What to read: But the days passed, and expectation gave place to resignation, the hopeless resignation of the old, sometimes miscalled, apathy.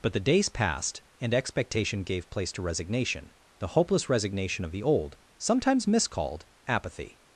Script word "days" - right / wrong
right